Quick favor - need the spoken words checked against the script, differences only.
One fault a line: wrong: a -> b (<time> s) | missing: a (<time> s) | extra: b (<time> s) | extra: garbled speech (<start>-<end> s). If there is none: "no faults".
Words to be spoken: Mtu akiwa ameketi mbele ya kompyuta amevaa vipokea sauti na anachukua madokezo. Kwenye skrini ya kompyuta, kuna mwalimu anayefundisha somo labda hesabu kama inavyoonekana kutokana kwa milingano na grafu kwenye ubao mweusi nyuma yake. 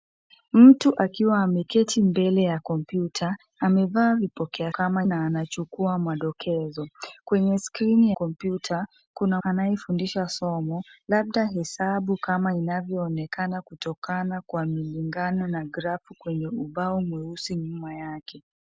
wrong: sauti -> kama (4.7 s)
missing: ya (8.1 s)
missing: mwalimu (9.4 s)